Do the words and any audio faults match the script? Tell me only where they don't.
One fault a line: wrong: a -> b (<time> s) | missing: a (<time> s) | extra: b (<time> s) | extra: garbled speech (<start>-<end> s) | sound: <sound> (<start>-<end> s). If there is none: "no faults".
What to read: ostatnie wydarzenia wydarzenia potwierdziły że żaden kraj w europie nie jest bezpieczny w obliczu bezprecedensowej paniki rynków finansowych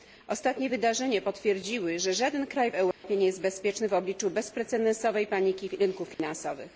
missing: wydarzenia (1.2 s)
sound: dropout (2.9-3.0 s)
sound: dropout (6.1-6.2 s)